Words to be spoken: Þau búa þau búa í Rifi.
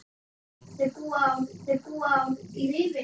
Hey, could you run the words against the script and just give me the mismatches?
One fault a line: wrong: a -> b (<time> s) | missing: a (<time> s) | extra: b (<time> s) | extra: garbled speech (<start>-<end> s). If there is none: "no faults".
no faults